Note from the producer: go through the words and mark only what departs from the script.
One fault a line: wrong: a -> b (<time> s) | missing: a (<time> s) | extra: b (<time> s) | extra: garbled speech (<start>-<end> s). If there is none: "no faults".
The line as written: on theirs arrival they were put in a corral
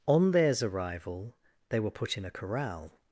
no faults